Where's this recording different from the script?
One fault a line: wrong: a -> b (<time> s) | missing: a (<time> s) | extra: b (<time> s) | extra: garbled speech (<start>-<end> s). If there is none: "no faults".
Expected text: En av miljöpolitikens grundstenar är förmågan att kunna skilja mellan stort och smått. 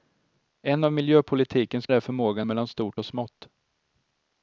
missing: grundstenar (1.9 s)
missing: att kunna skilja (2.5 s)